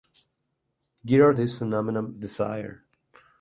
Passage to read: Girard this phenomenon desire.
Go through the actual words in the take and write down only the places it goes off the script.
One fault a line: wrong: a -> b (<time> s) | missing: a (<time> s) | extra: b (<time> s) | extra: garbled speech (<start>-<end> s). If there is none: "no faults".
no faults